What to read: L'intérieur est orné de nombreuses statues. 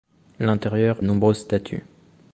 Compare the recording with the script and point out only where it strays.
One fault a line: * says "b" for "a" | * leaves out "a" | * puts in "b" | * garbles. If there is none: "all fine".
* leaves out "est orné de"